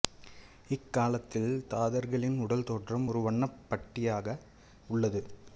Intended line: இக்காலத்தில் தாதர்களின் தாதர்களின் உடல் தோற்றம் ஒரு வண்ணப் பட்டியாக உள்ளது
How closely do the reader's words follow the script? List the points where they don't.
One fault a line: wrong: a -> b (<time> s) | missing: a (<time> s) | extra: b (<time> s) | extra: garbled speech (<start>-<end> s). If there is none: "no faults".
missing: தாதர்களின் (2.4 s)